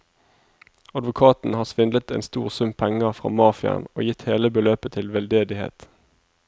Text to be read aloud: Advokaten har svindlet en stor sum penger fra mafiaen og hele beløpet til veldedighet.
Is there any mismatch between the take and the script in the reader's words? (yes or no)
yes